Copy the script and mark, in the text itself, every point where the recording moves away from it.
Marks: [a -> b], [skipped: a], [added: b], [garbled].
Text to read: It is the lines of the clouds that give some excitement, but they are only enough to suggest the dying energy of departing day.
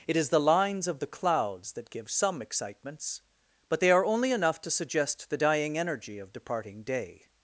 It is the lines of the clouds that give some [excitement, -> excitements] but they are only enough to suggest the dying energy of departing day.